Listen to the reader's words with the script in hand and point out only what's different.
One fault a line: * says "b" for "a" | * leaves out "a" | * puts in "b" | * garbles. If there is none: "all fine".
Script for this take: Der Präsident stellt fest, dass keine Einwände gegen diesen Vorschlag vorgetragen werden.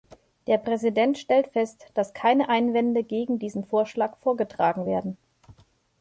all fine